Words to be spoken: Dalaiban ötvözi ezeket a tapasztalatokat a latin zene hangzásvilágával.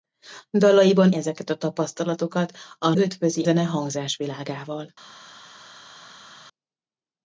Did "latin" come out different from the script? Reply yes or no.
yes